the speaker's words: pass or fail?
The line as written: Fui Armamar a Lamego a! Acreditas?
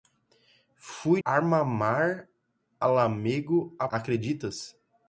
pass